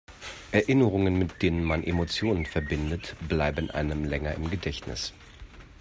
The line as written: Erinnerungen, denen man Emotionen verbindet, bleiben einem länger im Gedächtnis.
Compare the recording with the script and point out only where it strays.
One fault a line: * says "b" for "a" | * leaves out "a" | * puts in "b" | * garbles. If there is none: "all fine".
* puts in "mit"